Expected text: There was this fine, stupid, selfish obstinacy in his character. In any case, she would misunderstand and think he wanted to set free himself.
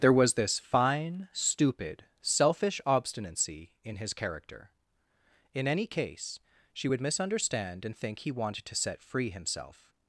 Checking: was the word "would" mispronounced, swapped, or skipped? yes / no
no